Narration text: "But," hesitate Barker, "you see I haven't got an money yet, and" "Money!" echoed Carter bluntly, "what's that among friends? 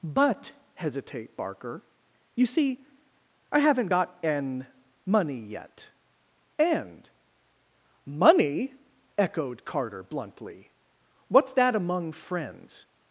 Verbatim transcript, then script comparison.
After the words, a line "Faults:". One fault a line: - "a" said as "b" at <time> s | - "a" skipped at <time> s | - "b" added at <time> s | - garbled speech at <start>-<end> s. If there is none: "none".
"But," hesitate Barker, "you see I haven't got an money yet, and" "Money!" echoed Carter bluntly, "what's that among friends?
Faults:
none